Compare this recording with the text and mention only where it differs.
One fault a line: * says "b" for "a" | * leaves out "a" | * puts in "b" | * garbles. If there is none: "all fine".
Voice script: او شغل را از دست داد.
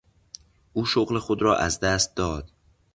* puts in "خود"